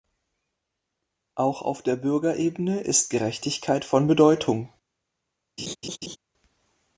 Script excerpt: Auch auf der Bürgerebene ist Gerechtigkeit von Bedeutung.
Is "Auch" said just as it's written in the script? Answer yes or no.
yes